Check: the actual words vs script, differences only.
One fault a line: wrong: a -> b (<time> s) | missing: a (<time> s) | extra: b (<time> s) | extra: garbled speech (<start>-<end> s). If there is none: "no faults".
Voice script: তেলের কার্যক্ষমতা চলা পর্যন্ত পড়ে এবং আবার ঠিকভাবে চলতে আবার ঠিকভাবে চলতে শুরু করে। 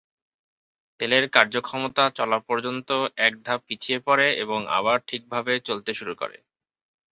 wrong: পড়ে এবং আবার ঠিকভাবে চলতে -> এক ধাপ পিছিয়ে পড়ে এবং (3.2 s)